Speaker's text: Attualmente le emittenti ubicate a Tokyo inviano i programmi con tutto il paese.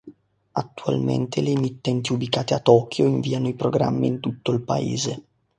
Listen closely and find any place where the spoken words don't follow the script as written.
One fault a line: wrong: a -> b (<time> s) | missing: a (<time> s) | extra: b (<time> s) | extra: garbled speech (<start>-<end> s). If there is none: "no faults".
wrong: con -> in (4.1 s)